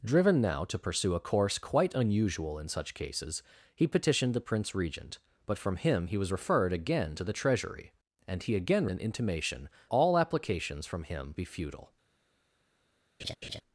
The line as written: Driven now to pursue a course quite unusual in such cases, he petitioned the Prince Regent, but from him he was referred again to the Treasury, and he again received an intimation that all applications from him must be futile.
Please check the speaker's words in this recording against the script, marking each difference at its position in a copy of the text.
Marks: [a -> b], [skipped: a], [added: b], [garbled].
Driven now to pursue a course quite unusual in such cases, he petitioned the Prince Regent, but from him he was referred again to the Treasury, and he again [skipped: received] an intimation [skipped: that] all applications from him [skipped: must] be futile.